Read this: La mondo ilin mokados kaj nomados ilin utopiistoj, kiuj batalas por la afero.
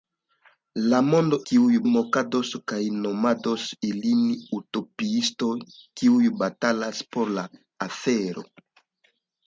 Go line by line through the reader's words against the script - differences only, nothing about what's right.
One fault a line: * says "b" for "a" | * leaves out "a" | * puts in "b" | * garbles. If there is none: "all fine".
* says "kiuj" for "ilin"